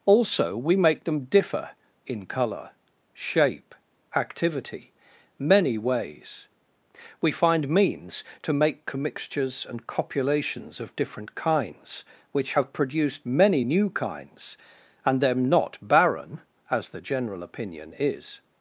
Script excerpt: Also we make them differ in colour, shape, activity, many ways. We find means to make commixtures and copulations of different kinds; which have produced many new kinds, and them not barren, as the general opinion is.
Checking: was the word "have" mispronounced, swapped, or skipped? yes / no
no